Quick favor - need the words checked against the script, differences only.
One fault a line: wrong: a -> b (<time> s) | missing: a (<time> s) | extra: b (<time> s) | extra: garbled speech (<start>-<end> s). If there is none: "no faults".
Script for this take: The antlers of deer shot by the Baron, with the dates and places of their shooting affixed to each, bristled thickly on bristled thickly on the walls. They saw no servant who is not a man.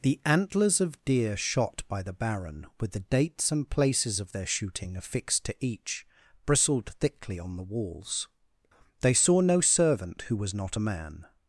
missing: bristled thickly on (7.5 s)
wrong: is -> was (10.3 s)